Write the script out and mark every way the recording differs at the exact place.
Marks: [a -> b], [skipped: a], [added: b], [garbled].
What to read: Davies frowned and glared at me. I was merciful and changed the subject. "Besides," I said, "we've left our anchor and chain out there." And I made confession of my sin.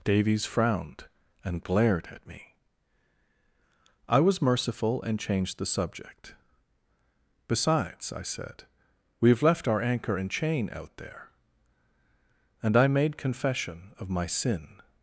Davies frowned and glared at me. I was merciful and changed the subject. "Besides," I said, "we've left our anchor and chain out there." And I made confession of my sin.